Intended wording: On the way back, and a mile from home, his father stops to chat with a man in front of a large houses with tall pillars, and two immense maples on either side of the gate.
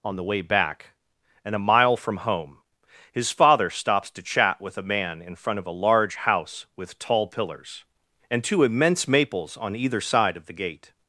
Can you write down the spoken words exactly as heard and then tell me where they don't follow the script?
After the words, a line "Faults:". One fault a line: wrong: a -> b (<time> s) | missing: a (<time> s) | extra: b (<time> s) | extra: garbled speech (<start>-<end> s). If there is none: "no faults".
On the way back, and a mile from home, his father stops to chat with a man in front of a large house with tall pillars, and two immense maples on either side of the gate.
Faults:
wrong: houses -> house (6.1 s)